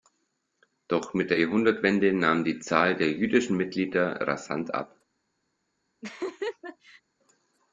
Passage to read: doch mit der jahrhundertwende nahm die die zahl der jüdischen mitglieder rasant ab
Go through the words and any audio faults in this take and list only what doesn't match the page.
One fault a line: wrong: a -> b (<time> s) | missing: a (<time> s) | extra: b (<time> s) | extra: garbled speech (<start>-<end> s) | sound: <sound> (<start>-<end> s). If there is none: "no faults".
missing: die (2.6 s)
sound: laugh (6.0-7.0 s)